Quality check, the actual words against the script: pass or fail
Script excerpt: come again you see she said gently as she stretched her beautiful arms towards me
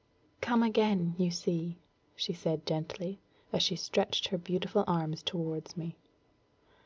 pass